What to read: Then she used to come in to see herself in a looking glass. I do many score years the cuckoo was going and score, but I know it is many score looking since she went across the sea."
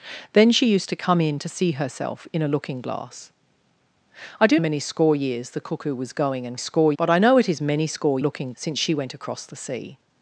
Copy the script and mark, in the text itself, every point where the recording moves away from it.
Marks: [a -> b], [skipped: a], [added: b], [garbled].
Then she used to come in to see herself in a looking glass. I do many score years the cuckoo was going and score, but I know it is many score looking since she went across the sea."